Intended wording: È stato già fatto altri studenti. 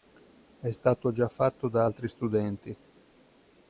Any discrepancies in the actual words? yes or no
yes